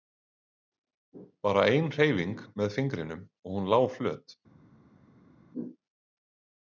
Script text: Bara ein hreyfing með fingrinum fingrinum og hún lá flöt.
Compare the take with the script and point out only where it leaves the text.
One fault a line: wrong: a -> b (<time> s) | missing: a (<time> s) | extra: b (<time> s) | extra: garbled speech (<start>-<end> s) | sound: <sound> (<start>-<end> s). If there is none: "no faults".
missing: fingrinum (3.3 s)